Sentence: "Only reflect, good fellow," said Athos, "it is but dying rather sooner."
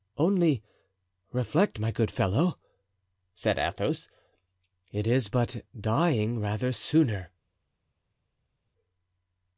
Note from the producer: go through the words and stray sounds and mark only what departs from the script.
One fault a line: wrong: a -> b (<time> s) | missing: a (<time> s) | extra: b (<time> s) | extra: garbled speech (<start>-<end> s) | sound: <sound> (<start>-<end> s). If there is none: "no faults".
extra: my (1.8 s)